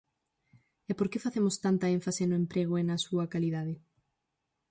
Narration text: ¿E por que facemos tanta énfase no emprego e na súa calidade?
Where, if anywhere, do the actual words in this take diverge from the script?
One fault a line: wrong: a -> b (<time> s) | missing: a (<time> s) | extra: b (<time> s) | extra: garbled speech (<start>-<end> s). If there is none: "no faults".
no faults